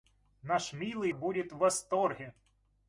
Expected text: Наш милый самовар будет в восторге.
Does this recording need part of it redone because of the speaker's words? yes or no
yes